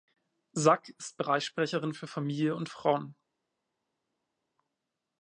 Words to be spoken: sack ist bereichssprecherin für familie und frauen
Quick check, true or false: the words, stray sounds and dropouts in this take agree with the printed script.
true